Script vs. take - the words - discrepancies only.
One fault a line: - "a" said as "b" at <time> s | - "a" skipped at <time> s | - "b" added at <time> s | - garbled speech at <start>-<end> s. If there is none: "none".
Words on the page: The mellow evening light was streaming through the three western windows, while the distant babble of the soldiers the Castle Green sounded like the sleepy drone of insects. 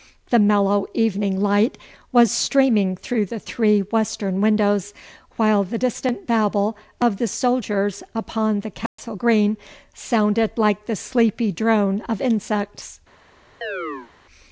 - "upon" added at 8.2 s